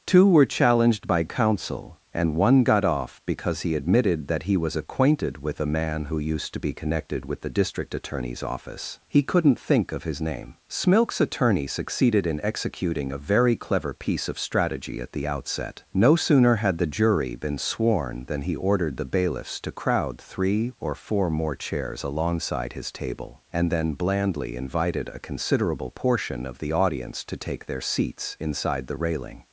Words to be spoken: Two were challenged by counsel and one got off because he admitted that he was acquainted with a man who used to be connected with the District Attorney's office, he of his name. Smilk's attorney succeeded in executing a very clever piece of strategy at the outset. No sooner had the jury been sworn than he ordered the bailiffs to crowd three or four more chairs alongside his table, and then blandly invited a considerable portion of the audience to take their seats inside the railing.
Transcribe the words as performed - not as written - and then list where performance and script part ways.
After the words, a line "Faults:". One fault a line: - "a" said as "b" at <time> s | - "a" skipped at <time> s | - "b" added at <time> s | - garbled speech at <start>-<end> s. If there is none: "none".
Two were challenged by counsel and one got off because he admitted that he was acquainted with a man who used to be connected with the District Attorney's office, he couldn't think of his name. Smilk's attorney succeeded in executing a very clever piece of strategy at the outset. No sooner had the jury been sworn than he ordered the bailiffs to crowd three or four more chairs alongside his table, and then blandly invited a considerable portion of the audience to take their seats inside the railing.
Faults:
- "couldn't think" added at 9.2 s